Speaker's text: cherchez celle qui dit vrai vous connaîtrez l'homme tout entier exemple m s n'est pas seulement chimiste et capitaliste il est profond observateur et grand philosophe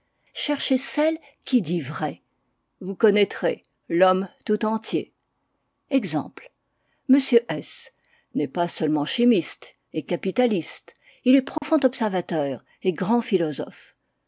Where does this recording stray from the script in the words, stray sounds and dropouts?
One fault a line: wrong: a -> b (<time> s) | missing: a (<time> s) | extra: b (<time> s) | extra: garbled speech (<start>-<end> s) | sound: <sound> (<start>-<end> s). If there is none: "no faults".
sound: dropout (11.6-11.6 s)